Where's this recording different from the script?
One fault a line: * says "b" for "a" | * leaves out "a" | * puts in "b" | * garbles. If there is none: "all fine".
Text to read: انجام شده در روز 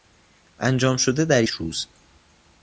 all fine